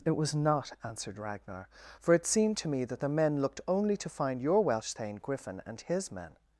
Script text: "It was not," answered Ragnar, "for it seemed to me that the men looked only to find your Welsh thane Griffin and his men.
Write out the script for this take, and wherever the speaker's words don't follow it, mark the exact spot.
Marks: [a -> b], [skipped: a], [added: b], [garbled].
"It was not," answered Ragnar, "for it seemed to me that the men looked only to find your Welsh thane Griffin and his men.